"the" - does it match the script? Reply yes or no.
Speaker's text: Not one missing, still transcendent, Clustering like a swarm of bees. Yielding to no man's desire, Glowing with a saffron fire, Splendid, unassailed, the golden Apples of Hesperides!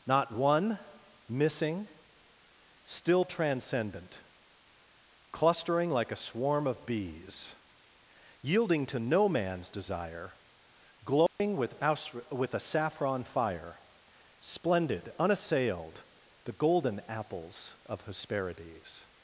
yes